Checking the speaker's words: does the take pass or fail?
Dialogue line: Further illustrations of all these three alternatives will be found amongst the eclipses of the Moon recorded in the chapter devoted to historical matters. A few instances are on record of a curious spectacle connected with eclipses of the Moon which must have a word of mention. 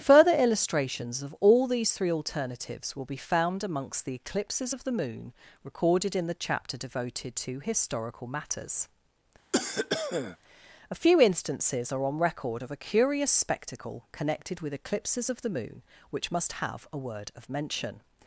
pass